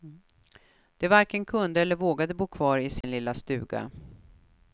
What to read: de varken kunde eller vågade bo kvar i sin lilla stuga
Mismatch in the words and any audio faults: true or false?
true